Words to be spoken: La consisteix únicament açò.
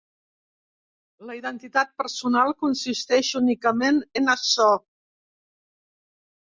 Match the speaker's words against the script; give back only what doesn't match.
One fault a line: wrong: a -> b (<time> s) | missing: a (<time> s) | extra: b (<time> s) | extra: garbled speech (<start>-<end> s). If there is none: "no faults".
extra: identitat personal (1.4 s)
extra: en (4.2 s)